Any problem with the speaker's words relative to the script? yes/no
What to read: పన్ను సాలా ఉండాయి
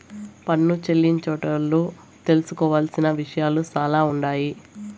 yes